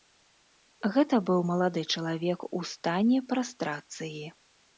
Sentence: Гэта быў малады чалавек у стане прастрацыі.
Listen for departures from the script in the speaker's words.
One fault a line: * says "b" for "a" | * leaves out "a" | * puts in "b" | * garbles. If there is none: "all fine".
all fine